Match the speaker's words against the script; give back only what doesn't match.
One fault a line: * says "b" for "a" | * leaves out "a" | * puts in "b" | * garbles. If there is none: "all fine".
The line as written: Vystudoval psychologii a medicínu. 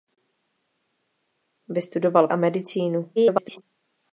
* leaves out "psychologii"
* garbles